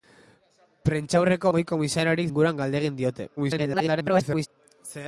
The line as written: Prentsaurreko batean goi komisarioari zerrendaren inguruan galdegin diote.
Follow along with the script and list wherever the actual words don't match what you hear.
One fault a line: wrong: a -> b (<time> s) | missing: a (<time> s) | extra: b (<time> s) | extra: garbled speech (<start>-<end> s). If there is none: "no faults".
missing: batean (1.5 s)
missing: zerrendaren (2.3 s)
extra: garbled speech (3.4-4.5 s)